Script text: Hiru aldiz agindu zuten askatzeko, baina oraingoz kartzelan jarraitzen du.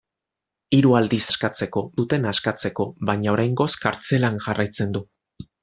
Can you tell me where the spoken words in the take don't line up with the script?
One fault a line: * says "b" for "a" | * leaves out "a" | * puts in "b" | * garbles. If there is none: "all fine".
* says "askatzeko" for "agindu"